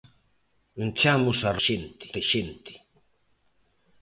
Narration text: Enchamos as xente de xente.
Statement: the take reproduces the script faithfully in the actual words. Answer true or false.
true